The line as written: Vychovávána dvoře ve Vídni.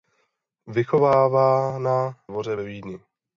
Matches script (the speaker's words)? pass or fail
pass